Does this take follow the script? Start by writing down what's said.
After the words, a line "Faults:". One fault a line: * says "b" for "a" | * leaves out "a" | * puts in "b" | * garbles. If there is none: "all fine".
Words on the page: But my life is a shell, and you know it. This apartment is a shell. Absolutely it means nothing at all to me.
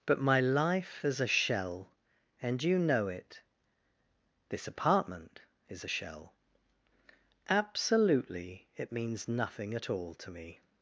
But my life is a shell, and you know it. This apartment is a shell. Absolutely it means nothing at all to me.
Faults:
all fine